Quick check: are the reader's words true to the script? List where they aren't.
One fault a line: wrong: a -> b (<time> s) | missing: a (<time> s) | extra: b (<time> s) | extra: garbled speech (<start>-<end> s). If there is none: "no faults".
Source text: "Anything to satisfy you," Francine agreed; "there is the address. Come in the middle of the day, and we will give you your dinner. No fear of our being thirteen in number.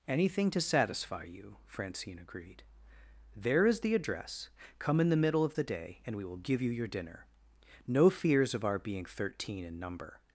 wrong: fear -> fears (8.1 s)